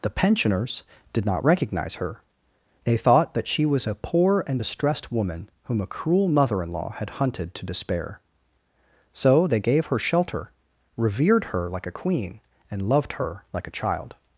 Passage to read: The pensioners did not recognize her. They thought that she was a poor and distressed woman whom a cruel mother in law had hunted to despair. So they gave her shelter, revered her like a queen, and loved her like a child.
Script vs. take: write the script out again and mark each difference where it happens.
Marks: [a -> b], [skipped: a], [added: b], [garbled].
The pensioners did not recognize her. They thought that she was a poor and distressed woman whom a cruel mother in law had hunted to despair. So they gave her shelter, revered her like a queen, and loved her like a child.